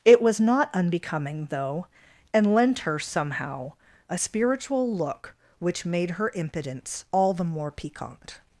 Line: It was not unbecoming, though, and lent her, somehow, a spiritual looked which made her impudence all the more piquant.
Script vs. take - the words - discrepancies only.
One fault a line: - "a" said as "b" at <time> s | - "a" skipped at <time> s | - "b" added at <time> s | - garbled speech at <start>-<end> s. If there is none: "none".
- "looked" said as "look" at 5.0 s